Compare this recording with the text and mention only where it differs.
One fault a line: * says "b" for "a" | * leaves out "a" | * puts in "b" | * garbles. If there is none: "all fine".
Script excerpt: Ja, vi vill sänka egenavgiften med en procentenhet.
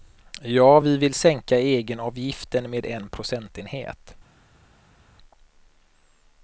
all fine